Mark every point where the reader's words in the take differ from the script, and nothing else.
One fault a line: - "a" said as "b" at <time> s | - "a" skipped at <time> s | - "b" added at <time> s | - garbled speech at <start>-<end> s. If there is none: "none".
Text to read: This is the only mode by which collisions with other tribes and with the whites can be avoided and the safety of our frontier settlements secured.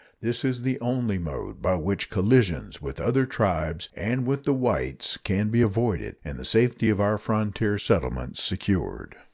none